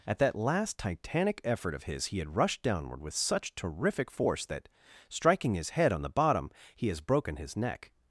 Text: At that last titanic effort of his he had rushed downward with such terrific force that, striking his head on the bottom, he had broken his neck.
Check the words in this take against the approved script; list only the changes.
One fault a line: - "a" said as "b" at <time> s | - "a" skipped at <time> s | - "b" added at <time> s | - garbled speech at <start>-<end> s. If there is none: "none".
- "had" said as "has" at 6.9 s